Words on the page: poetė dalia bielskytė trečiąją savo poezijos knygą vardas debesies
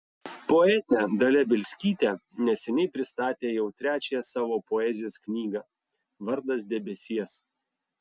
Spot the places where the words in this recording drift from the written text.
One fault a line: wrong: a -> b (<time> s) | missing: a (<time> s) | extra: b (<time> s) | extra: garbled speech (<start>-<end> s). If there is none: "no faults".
extra: neseniai pristatė jau (2.5 s)